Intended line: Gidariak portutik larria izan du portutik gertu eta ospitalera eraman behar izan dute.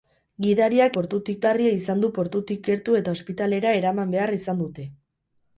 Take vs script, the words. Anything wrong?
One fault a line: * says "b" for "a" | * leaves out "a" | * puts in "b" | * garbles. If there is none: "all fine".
all fine